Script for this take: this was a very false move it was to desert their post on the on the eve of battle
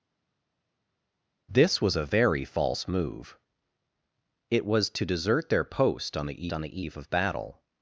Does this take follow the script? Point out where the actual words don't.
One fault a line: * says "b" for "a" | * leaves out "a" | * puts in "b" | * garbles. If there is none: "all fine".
all fine